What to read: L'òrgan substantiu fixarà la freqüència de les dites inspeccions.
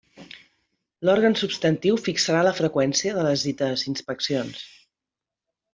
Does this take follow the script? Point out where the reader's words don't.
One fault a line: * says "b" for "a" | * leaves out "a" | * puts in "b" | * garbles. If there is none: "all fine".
all fine